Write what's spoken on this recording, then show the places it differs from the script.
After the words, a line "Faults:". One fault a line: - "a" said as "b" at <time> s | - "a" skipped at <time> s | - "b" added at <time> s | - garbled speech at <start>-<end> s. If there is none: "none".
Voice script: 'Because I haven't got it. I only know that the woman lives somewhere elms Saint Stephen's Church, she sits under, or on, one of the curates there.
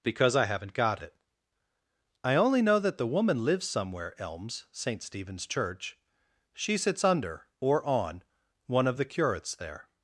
'Because I haven't got it. I only know that the woman lives somewhere elms Saint Stephen's Church, she sits under, or on, one of the curates there.
Faults:
none